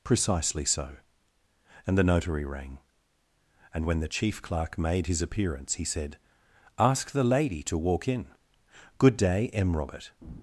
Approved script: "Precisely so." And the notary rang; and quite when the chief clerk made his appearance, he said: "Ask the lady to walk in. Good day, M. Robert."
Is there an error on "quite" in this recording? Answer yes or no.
yes